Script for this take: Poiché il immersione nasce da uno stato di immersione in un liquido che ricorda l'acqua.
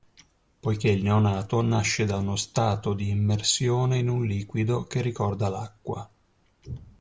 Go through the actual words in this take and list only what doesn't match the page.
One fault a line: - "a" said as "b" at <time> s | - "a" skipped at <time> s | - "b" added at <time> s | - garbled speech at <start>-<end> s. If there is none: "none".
- "immersione" said as "neonato" at 1.0 s